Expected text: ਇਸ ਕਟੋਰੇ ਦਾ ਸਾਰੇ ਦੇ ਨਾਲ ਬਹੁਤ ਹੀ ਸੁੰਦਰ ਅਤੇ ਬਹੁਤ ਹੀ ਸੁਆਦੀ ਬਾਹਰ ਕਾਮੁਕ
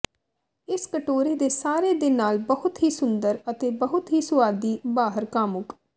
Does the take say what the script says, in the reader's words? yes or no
no